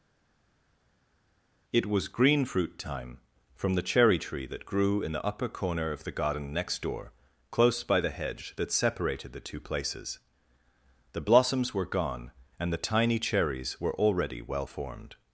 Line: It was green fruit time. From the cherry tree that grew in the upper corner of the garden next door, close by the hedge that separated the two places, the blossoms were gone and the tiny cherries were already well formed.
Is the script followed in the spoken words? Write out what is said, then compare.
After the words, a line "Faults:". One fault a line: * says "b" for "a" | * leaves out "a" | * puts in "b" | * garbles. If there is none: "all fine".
It was green fruit time. From the cherry tree that grew in the upper corner of the garden next door, close by the hedge that separated the two places, the blossoms were gone and the tiny cherries were already well formed.
Faults:
all fine